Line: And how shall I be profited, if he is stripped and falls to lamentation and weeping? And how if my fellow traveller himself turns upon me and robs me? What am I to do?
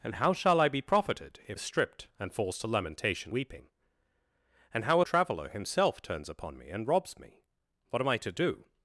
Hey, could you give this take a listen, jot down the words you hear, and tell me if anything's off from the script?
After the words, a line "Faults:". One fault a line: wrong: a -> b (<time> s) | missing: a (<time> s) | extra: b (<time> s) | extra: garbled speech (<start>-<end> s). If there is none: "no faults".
And how shall I be profited, if is stripped and falls to lamentation weeping? And how traveller himself turns upon me and robs me? What am I to do?
Faults:
missing: he (1.6 s)
missing: and (3.3 s)
missing: if my fellow (5.0 s)